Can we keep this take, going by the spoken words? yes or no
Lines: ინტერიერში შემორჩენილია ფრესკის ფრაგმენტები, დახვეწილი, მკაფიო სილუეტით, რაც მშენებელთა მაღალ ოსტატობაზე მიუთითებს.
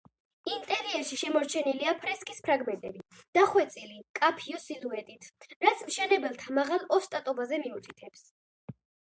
yes